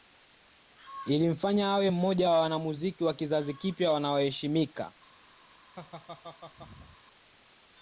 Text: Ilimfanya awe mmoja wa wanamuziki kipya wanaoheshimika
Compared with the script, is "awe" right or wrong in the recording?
right